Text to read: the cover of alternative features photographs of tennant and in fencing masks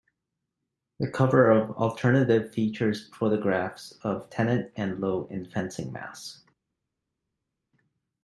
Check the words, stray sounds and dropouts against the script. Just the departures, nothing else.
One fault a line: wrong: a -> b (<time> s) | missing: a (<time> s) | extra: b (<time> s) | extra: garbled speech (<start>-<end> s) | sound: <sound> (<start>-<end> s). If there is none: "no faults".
extra: lowe (5.0 s)